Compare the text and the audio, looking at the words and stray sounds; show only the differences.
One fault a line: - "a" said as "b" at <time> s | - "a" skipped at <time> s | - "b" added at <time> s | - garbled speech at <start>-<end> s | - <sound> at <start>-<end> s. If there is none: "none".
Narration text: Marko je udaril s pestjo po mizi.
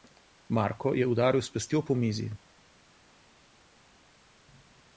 none